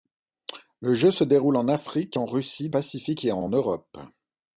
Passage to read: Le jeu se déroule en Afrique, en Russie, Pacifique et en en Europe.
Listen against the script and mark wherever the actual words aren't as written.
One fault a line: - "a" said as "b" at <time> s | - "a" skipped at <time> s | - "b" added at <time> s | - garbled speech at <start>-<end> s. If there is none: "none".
none